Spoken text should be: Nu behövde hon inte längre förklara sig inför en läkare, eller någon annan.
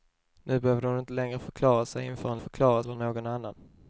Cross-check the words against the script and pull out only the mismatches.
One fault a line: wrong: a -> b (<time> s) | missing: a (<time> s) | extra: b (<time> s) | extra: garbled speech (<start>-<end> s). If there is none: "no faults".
wrong: läkare -> förklara (2.4 s)